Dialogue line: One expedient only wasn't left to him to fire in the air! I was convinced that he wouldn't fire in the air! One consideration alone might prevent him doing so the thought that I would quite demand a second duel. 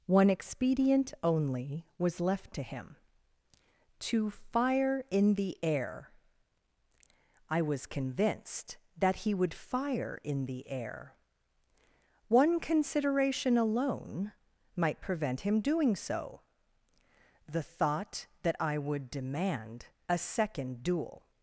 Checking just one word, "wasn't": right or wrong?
wrong